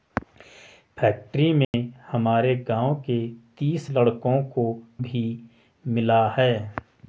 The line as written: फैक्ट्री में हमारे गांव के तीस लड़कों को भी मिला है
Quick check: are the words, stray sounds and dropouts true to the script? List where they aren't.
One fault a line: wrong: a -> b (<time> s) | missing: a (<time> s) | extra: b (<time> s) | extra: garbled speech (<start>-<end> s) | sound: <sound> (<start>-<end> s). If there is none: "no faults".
sound: dropout (1.6-1.7 s)